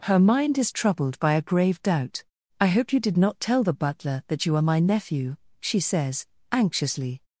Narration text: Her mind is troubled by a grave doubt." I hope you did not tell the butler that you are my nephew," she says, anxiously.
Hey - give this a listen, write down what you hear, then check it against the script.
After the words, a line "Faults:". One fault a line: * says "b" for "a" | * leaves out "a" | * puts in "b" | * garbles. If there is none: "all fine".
Her mind is troubled by a grave doubt." I hope you did not tell the butler that you are my nephew," she says, anxiously.
Faults:
all fine